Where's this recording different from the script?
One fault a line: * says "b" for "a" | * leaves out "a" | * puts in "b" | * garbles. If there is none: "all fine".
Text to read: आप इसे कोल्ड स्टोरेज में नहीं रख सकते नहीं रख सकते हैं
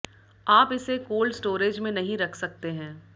* leaves out "नहीं रख सकते"